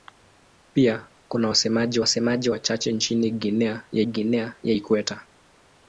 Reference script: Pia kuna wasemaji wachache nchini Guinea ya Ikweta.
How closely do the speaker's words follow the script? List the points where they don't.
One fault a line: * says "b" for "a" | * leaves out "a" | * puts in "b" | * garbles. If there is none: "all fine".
* puts in "wasemaji"
* puts in "Guinea ya"